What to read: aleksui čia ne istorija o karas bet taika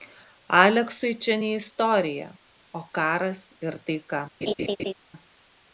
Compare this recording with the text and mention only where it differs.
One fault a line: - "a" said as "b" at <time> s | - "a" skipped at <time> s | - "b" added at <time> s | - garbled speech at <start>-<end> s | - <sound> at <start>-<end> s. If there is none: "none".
- "bet" said as "ir" at 3.7 s
- laugh at 4.4-4.9 s